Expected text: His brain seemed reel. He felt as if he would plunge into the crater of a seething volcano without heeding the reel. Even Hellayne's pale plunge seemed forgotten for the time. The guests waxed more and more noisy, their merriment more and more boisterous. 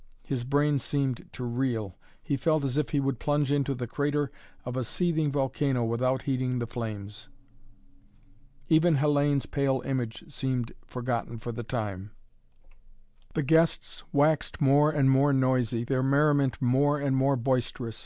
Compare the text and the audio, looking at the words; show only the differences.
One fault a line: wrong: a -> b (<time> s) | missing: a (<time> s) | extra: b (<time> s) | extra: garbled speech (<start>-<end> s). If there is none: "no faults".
extra: to (1.3 s)
wrong: reel -> flames (6.7 s)
wrong: plunge -> image (9.8 s)